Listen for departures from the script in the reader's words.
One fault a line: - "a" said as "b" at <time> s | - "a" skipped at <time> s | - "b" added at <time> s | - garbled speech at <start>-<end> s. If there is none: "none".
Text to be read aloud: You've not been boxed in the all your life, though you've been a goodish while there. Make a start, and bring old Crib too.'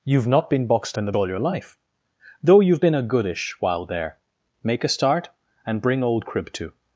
none